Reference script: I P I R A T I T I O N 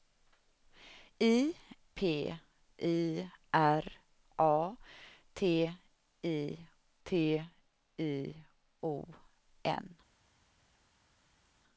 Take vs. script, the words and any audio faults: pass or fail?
pass